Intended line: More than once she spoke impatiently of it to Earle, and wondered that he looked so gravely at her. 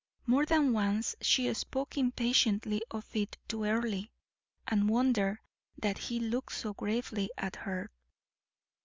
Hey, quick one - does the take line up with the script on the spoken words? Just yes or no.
yes